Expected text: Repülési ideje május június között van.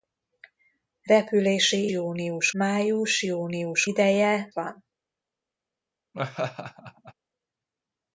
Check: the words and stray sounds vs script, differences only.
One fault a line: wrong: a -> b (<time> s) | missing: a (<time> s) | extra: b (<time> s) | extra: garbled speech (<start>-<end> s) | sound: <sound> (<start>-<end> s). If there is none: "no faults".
wrong: ideje -> június (1.9 s)
wrong: között -> ideje (3.9 s)
sound: laugh (6.1-7.1 s)